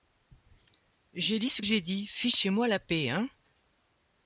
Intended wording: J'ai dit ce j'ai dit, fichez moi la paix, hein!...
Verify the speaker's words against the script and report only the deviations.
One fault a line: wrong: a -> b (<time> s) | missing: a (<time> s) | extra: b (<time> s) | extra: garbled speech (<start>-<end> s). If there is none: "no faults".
no faults